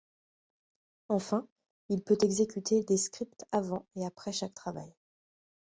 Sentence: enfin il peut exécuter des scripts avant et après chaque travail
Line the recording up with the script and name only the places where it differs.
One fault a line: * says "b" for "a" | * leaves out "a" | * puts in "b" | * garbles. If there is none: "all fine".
all fine